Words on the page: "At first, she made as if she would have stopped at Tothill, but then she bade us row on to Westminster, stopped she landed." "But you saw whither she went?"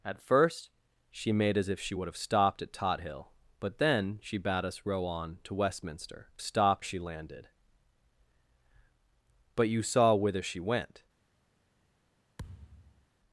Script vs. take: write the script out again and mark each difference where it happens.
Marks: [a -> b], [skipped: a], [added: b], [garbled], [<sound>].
"At first, she made as if she would have stopped at Tothill, but then she bade us row on to Westminster, stopped she landed." "But you saw whither she went?" [thud]